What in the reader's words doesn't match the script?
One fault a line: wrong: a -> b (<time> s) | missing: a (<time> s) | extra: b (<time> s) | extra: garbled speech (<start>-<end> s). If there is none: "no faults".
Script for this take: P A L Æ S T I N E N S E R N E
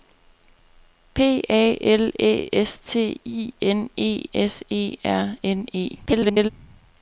missing: N (4.2 s)
extra: garbled speech (6.1-6.5 s)